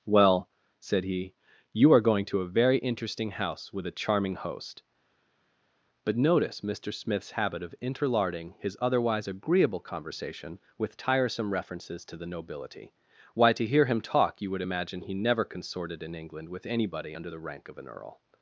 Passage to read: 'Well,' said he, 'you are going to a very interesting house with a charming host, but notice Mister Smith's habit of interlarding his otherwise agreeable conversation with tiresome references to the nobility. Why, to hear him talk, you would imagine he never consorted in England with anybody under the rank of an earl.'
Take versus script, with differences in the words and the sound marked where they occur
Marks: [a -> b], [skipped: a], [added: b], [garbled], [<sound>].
'Well,' said he, 'you are going to a very interesting house with a charming host, but notice Mister Smith's habit of interlarding his otherwise agreeable conversation with tiresome references to the nobility. Why, to hear him talk, you would imagine he never consorted in England with anybody under the rank of an earl.'